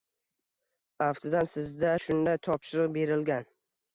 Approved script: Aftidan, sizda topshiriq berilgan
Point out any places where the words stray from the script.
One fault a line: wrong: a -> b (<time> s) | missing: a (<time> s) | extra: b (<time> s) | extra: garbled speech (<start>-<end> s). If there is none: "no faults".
extra: shunday (2.0 s)